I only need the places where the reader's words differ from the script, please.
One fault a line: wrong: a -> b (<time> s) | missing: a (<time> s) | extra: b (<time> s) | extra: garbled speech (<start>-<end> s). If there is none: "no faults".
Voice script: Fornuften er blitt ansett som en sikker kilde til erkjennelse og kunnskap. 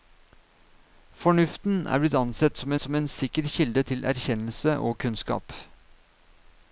extra: som (2.8 s)